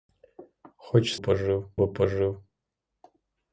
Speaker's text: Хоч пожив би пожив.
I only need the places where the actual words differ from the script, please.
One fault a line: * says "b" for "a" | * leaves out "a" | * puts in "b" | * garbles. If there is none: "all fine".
all fine